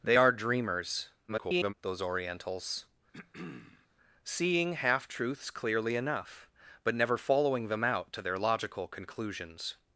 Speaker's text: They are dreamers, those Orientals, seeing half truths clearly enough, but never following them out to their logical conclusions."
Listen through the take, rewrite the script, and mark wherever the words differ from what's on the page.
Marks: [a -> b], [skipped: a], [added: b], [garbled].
They are dreamers, [garbled] those Orientals, seeing half truths clearly enough, but never following them out to their logical conclusions."